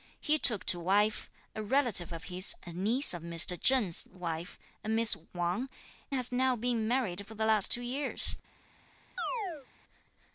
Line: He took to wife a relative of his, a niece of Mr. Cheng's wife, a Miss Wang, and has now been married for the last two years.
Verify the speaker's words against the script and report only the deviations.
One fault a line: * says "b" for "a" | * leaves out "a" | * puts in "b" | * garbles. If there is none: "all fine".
* leaves out "and"